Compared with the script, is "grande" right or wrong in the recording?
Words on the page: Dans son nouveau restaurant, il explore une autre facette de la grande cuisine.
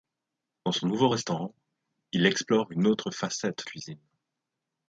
wrong